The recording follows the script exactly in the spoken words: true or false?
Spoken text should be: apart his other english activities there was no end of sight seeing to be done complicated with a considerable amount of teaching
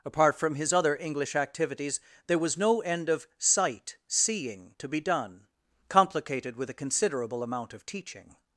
false